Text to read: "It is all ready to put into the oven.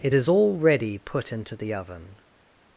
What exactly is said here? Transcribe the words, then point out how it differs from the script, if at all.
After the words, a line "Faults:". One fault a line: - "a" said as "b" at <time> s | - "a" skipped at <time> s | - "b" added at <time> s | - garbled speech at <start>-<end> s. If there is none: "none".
"It is all ready put into the oven.
Faults:
- "to" skipped at 1.0 s